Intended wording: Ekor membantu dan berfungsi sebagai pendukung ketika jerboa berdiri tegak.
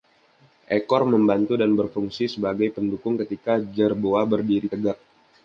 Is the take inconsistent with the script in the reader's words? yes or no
no